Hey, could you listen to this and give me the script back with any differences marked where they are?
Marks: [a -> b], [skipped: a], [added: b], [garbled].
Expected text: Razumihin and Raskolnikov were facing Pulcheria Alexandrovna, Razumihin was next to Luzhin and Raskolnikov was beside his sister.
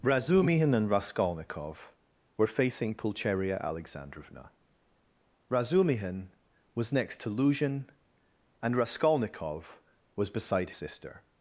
Razumihin and Raskolnikov were facing Pulcheria Alexandrovna, Razumihin was next to Luzhin and Raskolnikov was beside [skipped: his] sister.